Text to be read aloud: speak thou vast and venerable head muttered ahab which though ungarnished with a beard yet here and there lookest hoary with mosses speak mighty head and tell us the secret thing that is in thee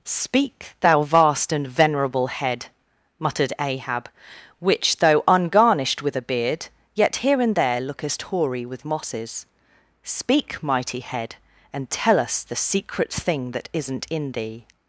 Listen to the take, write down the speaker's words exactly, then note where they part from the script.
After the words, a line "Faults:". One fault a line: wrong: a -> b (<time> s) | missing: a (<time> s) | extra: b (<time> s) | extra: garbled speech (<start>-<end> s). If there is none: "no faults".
speak thou vast and venerable head muttered ahab which though ungarnished with a beard yet here and there lookest hoary with mosses speak mighty head and tell us the secret thing that isn't in thee
Faults:
wrong: is -> isn't (13.7 s)